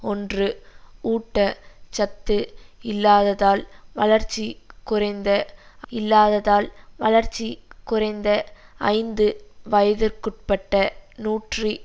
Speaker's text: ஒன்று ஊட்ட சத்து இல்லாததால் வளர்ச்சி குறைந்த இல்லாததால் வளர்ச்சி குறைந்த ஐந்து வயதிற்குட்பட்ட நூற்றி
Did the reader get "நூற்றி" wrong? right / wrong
right